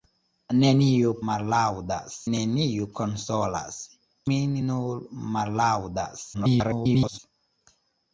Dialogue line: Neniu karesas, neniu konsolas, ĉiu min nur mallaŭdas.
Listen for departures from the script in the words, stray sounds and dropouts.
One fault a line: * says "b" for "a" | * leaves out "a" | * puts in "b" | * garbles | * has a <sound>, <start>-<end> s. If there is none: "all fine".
* says "mallaŭdas" for "karesas"
* leaves out "ĉiu"
* garbles